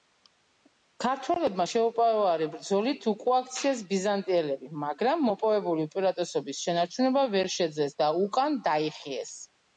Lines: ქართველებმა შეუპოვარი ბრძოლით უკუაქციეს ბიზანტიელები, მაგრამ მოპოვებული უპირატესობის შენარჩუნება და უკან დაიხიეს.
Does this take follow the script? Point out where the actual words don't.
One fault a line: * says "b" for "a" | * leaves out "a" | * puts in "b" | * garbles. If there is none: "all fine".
* puts in "ვერ შეძლეს"